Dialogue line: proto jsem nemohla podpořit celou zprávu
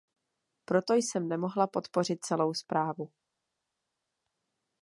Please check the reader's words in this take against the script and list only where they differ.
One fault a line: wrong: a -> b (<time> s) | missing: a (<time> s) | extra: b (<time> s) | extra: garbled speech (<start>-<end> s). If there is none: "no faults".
no faults